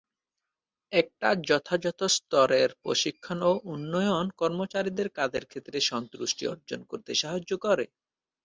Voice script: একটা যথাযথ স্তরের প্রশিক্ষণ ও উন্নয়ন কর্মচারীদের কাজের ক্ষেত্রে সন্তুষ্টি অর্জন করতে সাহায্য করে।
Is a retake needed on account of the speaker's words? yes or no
no